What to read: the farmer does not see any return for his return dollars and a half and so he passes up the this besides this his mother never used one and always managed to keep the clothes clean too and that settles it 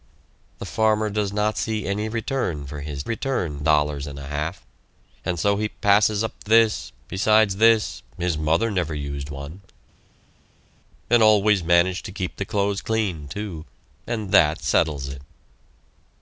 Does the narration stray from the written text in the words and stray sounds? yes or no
no